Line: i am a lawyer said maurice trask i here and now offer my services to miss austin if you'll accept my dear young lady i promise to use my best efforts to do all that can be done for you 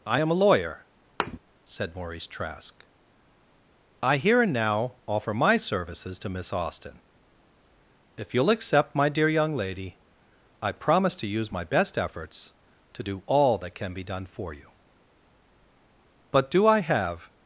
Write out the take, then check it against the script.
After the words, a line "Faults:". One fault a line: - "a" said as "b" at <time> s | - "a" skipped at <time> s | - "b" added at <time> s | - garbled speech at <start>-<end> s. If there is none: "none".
i am a lawyer said maurice trask i here and now offer my services to miss austin if you'll accept my dear young lady i promise to use my best efforts to do all that can be done for you but do i have
Faults:
- "but do i have" added at 16.3 s